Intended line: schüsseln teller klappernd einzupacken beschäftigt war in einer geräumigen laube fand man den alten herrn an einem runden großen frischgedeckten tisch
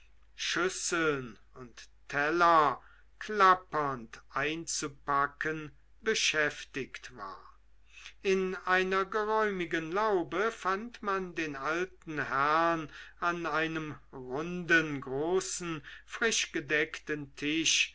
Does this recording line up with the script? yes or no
no